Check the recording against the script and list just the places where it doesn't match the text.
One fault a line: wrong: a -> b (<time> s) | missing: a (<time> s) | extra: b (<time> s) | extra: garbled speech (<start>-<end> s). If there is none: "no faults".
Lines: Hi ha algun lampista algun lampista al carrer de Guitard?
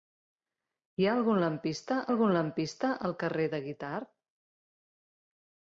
no faults